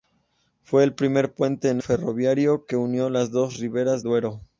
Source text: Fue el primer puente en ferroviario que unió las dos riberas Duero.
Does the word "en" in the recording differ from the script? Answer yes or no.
no